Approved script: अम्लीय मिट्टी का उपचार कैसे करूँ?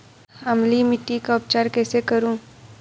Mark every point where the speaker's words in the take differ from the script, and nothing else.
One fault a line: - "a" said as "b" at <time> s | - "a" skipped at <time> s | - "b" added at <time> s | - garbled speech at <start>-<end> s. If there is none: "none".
none